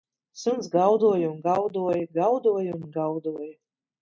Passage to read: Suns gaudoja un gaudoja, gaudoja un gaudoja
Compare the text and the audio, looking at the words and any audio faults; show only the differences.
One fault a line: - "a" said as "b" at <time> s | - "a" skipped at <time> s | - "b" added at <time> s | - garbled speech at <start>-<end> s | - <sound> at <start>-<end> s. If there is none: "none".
none